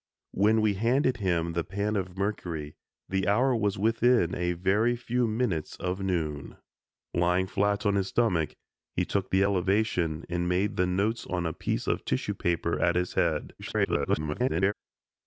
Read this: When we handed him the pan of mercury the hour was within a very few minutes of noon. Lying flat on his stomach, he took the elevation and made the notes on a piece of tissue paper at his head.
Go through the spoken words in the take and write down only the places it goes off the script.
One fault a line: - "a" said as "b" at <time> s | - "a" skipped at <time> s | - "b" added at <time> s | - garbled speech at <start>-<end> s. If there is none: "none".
- garbled speech at 13.6-14.7 s